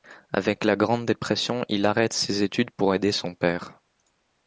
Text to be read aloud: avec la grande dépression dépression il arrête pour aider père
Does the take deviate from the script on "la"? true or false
false